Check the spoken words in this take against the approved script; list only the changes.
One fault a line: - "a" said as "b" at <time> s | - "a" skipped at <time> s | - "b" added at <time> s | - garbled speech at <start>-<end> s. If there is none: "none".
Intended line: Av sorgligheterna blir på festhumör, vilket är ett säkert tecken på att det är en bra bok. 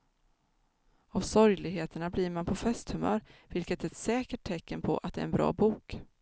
- "man" added at 2.3 s